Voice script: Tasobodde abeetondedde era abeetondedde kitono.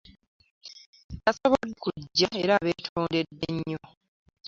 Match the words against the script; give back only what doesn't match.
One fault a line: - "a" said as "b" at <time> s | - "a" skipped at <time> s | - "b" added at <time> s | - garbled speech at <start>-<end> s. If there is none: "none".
- "abeetondedde" said as "kujja" at 1.8 s
- "kitono" said as "nnyo" at 3.6 s